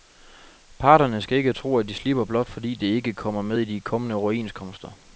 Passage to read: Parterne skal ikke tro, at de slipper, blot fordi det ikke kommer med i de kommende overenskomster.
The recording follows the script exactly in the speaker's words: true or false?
true